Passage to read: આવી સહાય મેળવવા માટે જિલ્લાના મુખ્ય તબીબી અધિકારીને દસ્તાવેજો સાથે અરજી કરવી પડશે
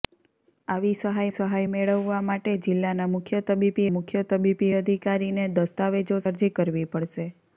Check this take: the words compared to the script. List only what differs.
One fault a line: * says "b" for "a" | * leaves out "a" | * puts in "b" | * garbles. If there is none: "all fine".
* puts in "સહાય"
* puts in "મુખ્ય તબીબી"
* leaves out "સાથે"